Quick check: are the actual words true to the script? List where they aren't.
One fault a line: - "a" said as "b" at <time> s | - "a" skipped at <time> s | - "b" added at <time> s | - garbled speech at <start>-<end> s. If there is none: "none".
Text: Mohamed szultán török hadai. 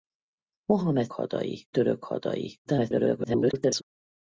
- "szultán" said as "hadai" at 1.1 s
- garbled speech at 2.6-3.8 s